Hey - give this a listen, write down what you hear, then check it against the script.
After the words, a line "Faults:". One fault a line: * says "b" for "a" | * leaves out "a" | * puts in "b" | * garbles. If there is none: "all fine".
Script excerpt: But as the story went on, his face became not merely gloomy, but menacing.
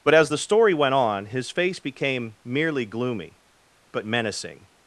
But as the story went on, his face became merely gloomy, but menacing.
Faults:
* leaves out "not"